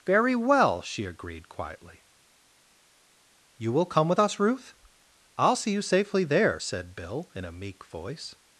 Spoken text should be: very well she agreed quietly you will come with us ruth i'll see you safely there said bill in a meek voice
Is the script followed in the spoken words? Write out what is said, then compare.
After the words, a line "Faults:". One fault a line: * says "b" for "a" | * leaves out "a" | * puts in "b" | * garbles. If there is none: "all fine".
very well she agreed quietly you will come with us ruth i'll see you safely there said bill in a meek voice
Faults:
all fine